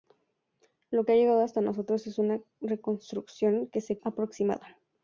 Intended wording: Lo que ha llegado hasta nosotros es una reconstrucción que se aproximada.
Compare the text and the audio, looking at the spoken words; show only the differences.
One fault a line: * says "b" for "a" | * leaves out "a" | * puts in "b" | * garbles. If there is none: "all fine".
all fine